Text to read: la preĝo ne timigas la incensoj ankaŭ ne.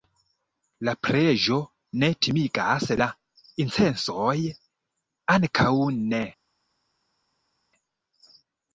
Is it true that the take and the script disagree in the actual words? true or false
false